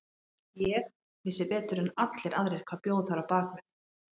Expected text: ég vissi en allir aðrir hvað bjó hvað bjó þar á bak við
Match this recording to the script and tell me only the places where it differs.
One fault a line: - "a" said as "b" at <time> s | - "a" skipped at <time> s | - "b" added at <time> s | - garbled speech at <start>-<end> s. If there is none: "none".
- "betur" added at 1.5 s
- "hvað bjó" skipped at 3.0 s